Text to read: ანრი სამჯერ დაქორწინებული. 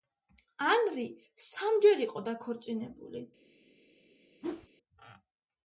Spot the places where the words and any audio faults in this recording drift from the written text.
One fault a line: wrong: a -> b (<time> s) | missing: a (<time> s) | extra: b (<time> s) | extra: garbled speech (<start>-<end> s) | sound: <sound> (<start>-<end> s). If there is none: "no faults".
extra: იყო (2.1 s)
sound: whoosh (4.4-4.7 s)